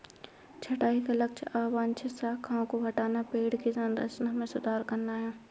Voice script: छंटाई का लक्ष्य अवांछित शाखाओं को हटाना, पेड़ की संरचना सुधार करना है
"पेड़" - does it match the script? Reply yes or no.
yes